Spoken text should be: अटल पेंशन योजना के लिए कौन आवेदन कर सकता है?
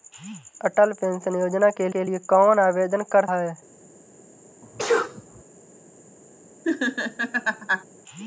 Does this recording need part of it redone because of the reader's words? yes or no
yes